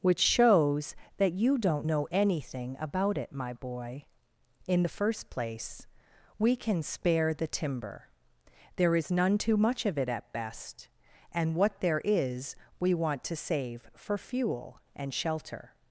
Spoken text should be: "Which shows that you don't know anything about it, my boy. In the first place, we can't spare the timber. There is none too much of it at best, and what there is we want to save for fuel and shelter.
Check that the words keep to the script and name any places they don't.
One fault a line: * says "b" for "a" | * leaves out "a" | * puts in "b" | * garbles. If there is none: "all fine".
* says "can" for "can't"